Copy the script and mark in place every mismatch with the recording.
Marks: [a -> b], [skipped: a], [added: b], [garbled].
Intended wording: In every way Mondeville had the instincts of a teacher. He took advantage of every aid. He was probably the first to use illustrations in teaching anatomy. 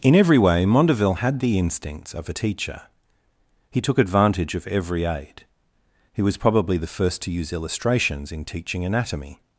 In every way Mondeville had the instincts of a teacher. He took advantage of every aid. He was probably the first to use illustrations in teaching anatomy.